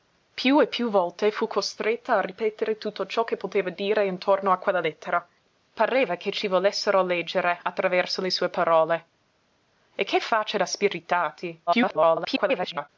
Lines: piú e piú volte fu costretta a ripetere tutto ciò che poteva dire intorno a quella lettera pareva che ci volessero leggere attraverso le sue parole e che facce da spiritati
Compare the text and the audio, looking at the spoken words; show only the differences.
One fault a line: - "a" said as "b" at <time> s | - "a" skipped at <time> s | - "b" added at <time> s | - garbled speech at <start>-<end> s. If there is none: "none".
- garbled speech at 11.7-12.9 s